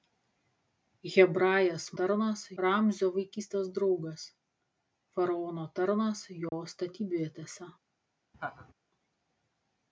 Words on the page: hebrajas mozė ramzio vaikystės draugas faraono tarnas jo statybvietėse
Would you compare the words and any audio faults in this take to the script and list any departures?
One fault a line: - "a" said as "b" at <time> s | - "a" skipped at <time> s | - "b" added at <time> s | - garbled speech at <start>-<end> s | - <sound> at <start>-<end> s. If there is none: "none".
- "mozė" said as "tarnas" at 2.0 s
- dropout at 6.5-6.5 s
- laugh at 8.3-8.7 s